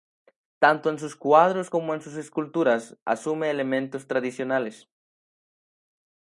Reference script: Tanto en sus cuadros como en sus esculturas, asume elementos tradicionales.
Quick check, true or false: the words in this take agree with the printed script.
true